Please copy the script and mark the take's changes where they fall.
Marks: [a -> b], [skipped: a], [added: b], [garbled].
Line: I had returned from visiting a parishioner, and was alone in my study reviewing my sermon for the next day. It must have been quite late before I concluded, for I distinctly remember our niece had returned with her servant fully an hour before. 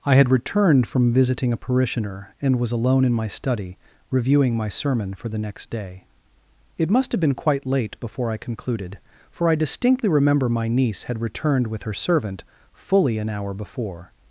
I had returned from visiting a parishioner, and was alone in my study reviewing my sermon for the next day. It must have been quite late before I concluded, for I distinctly remember [our -> my] niece had returned with her servant fully an hour before.